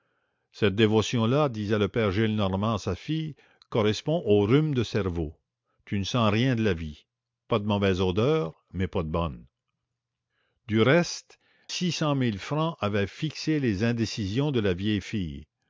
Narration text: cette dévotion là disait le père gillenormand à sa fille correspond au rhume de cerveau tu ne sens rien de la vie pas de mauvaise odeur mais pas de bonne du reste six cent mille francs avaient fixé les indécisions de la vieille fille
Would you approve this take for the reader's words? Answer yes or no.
yes